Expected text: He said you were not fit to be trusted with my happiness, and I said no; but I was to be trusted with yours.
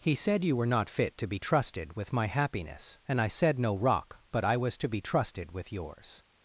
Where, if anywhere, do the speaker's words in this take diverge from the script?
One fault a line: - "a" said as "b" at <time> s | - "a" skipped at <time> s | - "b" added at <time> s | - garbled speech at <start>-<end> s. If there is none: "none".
- "rock" added at 3.8 s